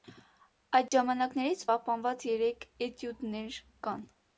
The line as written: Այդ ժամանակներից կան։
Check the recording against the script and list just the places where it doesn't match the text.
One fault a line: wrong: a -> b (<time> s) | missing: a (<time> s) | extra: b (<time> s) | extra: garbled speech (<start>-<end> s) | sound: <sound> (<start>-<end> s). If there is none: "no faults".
sound: dropout (0.9-0.9 s)
extra: պահպանված երեք էտյուդներ (1.7 s)